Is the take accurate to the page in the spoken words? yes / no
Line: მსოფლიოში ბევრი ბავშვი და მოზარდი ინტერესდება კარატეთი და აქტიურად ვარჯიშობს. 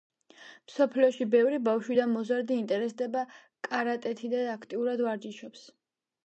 yes